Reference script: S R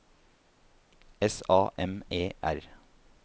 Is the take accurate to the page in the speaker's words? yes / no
no